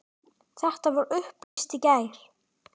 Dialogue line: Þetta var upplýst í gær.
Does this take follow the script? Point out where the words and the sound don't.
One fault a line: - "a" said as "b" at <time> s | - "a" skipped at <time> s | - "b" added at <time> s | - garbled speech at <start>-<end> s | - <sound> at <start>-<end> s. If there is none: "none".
- dropout at 1.4-1.6 s